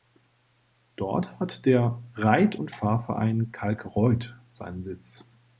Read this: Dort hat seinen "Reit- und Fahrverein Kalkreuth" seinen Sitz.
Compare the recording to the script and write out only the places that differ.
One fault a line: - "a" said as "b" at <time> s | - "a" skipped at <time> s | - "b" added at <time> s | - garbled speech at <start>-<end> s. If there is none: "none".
- "seinen" said as "der" at 1.7 s